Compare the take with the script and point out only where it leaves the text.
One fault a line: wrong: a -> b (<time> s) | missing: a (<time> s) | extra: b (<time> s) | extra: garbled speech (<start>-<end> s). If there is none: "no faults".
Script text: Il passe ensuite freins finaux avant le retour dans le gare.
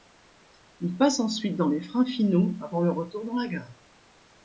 extra: dans les (1.6 s)
wrong: le -> la (3.4 s)